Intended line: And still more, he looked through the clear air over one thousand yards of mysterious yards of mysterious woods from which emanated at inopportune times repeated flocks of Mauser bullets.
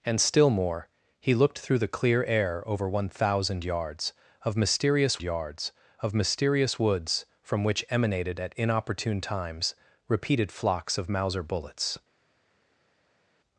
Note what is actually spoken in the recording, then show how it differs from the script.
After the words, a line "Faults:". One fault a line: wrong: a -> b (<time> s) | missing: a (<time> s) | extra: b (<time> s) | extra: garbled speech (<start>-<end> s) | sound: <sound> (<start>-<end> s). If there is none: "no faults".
And still more, he looked through the clear air over one thousand yards of mysterious yards of mysterious woods from which emanated at inopportune times repeated flocks of Mauser bullets.
Faults:
no faults